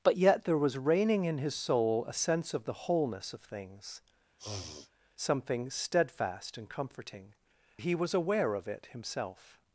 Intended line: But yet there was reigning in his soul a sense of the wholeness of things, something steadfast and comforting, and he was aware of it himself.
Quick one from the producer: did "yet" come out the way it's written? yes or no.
yes